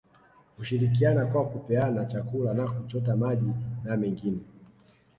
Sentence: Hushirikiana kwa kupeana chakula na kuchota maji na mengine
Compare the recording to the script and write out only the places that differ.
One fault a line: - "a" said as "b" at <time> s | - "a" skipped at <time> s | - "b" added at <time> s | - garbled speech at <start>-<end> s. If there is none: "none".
none